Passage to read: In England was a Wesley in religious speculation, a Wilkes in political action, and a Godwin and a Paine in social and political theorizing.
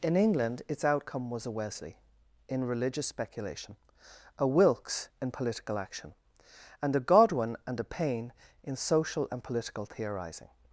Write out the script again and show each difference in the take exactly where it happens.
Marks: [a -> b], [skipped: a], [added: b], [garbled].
In England [added: its outcome] was a Wesley in religious speculation, a Wilkes in political action, and a Godwin and a Paine in social and political theorizing.